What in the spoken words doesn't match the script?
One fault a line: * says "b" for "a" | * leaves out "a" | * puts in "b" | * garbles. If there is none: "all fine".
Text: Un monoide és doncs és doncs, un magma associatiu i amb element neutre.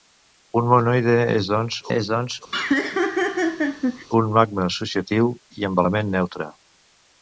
all fine